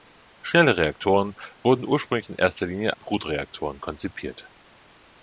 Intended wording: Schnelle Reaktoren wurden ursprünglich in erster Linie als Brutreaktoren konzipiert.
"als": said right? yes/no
no